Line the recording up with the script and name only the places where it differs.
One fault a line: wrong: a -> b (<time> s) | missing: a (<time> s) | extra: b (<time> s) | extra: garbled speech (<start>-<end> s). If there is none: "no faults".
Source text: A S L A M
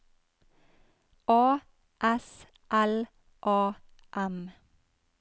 no faults